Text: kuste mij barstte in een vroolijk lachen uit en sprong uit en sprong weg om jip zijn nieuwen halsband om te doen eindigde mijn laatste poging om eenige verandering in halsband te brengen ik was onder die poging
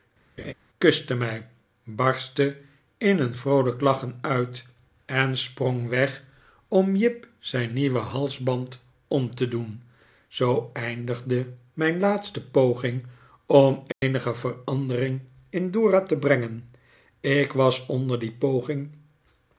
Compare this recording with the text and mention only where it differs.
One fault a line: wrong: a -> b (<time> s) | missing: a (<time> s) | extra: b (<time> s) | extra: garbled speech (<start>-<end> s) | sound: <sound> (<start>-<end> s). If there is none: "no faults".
sound: laugh (0.4-0.5 s)
missing: uit en sprong (5.9 s)
extra: zoo (10.3 s)
sound: dropout (13.9-14.0 s)
wrong: halsband -> dora (15.7 s)